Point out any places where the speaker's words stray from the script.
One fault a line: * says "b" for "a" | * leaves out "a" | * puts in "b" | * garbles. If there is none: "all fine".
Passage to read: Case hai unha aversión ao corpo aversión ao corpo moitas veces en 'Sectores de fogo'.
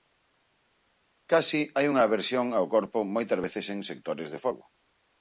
* leaves out "aversión ao corpo"